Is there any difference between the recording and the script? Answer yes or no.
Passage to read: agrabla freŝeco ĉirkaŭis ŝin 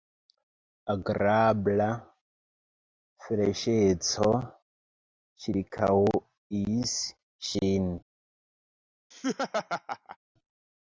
no